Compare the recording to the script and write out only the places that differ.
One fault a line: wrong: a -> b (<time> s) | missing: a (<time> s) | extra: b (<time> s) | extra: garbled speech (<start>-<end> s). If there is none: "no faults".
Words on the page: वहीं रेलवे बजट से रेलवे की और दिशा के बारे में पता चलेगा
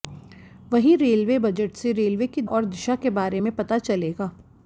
no faults